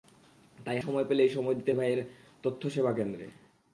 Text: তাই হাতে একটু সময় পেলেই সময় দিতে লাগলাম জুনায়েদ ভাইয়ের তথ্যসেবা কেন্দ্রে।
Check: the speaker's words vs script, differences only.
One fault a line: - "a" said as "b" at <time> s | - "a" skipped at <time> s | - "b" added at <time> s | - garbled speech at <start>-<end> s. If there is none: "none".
- "হাতে একটু" skipped at 0.8 s
- "লাগলাম জুনায়েদ" skipped at 1.7 s